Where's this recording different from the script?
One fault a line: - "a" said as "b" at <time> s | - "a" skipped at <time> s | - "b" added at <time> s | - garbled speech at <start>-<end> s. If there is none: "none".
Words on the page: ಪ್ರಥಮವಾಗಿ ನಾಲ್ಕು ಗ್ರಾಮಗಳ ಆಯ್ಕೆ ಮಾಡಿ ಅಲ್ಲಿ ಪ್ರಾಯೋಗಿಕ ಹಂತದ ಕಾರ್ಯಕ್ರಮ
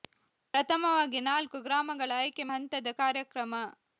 - "ಮಾಡಿ ಅಲ್ಲಿ ಪ್ರಾಯೋಗಿಕ" skipped at 2.5 s